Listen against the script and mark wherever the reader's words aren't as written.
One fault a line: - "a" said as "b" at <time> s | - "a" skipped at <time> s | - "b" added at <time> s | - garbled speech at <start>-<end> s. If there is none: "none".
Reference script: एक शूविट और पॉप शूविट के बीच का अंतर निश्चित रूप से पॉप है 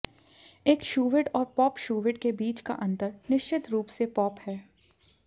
none